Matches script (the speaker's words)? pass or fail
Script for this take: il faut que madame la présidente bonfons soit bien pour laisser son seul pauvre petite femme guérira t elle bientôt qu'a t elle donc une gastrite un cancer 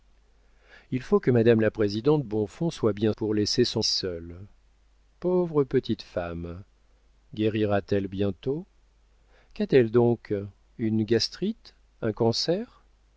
pass